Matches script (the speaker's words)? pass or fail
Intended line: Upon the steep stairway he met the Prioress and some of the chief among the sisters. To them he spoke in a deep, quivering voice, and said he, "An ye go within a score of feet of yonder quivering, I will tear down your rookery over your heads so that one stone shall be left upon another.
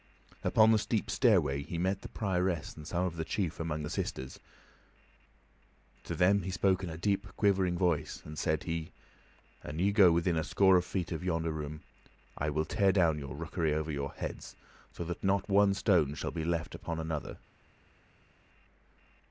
fail